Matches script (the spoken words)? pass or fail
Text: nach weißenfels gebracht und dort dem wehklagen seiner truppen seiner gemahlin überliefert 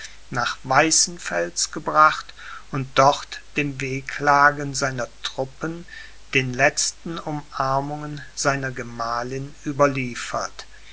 fail